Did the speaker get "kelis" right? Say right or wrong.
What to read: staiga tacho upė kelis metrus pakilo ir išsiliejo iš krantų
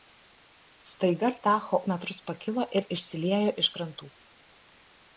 wrong